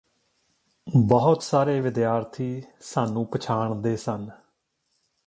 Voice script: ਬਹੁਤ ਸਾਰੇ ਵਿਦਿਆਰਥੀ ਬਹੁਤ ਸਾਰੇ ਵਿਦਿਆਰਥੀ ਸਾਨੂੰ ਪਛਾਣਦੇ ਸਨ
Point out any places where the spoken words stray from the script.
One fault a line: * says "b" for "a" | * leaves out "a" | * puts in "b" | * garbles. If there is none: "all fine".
* leaves out "ਬਹੁਤ ਸਾਰੇ ਵਿਦਿਆਰਥੀ"